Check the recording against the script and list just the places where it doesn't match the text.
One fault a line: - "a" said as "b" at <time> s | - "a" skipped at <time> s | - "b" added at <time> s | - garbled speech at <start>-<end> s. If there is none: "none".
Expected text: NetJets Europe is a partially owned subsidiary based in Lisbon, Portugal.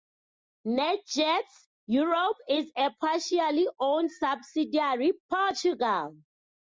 - "based in Lisbon" skipped at 5.1 s